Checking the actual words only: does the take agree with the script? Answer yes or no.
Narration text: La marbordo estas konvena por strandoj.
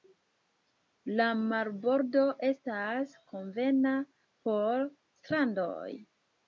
yes